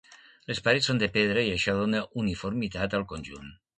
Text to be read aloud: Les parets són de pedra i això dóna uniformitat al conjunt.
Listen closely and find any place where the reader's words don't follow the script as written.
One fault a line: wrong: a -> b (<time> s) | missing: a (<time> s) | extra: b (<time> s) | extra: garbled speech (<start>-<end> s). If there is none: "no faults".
no faults